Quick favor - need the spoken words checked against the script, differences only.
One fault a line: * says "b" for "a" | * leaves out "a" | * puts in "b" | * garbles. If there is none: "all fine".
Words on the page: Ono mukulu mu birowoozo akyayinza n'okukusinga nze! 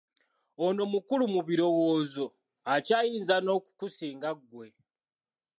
* says "ggwe" for "nze"